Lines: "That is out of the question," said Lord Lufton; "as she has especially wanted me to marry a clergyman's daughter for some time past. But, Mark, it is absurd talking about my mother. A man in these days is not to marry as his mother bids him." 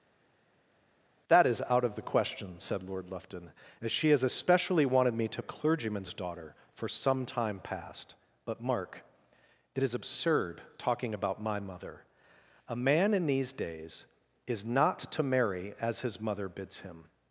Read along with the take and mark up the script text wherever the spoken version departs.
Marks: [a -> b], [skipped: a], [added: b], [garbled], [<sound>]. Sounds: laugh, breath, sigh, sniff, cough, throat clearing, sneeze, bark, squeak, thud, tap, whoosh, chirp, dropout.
"That is out of the question," said Lord Lufton; "as she has especially wanted me to [skipped: marry] a clergyman's daughter for some time past. But, Mark, it is absurd talking about my mother. A man in these days is not to marry as his mother bids him."